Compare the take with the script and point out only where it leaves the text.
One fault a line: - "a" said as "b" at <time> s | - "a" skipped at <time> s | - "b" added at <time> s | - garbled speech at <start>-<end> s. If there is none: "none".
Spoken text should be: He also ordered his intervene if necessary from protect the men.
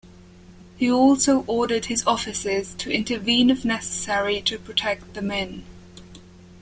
- "officers to" added at 2.1 s
- "from" said as "to" at 4.4 s